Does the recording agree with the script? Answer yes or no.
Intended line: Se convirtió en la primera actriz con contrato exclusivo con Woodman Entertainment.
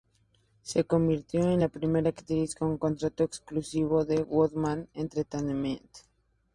yes